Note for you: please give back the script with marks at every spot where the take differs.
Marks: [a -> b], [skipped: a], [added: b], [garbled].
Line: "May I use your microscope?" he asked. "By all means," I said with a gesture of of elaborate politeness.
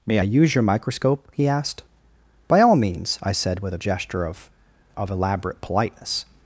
"May I use your microscope?" he asked. "By all means," I said with a gesture of of elaborate politeness.